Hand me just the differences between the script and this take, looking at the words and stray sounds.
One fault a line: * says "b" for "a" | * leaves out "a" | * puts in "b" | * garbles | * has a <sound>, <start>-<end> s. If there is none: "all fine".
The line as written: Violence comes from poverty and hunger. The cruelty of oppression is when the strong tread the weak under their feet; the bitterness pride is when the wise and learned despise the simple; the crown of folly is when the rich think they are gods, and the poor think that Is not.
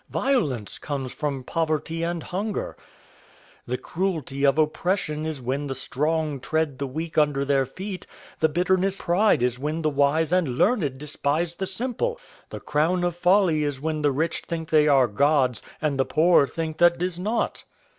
all fine